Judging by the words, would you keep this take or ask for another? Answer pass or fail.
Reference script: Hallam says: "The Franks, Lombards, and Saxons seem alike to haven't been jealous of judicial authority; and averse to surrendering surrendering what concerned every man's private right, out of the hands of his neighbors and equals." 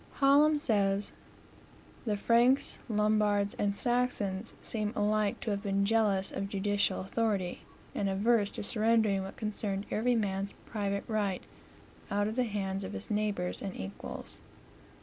fail